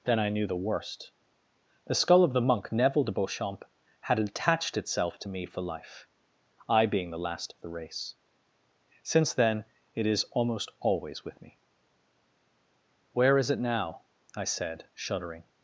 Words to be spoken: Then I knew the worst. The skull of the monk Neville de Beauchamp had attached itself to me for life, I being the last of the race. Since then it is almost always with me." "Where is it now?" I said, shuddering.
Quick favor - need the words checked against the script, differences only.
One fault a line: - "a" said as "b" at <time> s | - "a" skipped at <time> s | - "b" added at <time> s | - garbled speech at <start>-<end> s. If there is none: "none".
none